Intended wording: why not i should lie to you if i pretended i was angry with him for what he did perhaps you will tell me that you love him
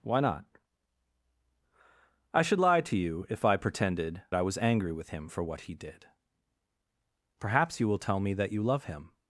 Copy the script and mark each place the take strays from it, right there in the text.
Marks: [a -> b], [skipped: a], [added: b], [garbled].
why not i should lie to you if i pretended i was angry with him for what he did perhaps you will tell me that you love him